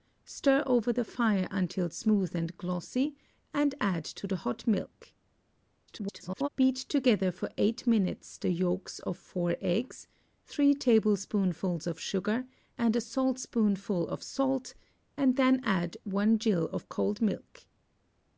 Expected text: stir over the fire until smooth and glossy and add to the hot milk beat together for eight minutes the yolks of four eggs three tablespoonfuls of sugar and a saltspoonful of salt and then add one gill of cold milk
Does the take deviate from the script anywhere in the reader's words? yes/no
yes